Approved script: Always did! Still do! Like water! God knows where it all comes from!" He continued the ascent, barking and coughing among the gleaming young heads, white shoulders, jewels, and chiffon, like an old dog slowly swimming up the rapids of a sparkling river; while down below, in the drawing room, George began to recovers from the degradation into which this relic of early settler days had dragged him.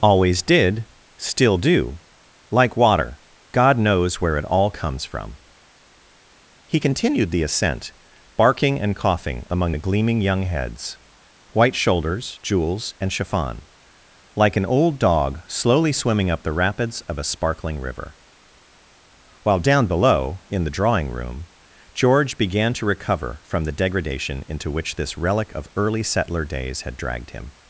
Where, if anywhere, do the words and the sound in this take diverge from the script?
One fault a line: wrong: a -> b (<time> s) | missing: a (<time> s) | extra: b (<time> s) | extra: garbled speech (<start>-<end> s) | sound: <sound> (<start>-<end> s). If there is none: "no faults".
wrong: recovers -> recover (22.8 s)